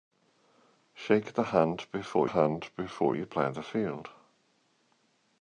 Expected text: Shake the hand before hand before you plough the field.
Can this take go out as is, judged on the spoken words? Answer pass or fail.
pass